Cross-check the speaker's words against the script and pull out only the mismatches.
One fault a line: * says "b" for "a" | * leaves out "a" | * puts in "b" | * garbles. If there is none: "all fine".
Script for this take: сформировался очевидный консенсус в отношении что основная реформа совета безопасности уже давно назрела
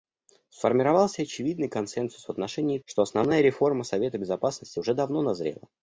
all fine